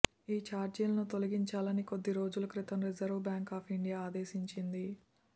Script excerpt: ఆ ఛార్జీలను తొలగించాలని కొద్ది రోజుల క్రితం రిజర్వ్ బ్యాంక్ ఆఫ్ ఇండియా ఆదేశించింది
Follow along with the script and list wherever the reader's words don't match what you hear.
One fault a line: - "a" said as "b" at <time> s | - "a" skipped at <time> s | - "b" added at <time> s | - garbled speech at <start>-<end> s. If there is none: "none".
- "ఆ" said as "ఈ" at 0.3 s